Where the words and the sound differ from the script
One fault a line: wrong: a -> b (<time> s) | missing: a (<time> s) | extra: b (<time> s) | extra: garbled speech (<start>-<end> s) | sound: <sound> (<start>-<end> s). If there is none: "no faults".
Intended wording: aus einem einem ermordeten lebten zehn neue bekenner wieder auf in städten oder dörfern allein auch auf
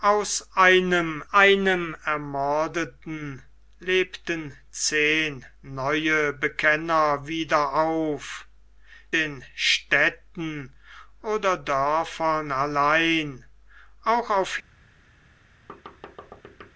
sound: thud (15.7-16.7 s)